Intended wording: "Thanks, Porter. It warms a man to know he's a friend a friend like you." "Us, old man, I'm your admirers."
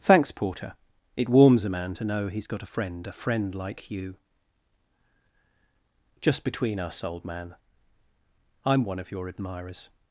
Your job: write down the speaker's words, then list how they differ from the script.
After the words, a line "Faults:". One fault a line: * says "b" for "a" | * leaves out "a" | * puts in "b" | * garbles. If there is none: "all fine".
"Thanks, Porter. It warms a man to know he's got a friend a friend like you." "Just between us, old man, I'm one of your admirers."
Faults:
* puts in "got"
* puts in "Just between"
* puts in "one of"